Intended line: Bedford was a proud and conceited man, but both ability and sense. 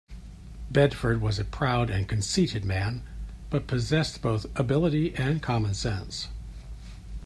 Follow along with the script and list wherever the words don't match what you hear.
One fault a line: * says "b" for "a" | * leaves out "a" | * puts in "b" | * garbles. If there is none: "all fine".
* puts in "possessed"
* puts in "common"